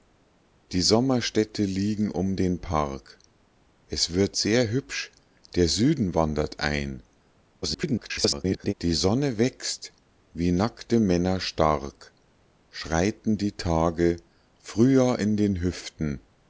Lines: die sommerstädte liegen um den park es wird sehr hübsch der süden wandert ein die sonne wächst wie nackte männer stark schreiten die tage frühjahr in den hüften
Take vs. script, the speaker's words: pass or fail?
fail